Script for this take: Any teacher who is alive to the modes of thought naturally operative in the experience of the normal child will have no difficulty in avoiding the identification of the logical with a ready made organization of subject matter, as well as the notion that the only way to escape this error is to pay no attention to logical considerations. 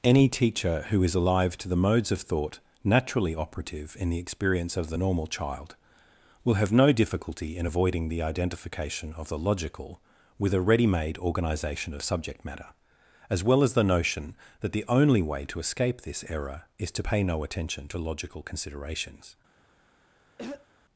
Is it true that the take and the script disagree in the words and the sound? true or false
true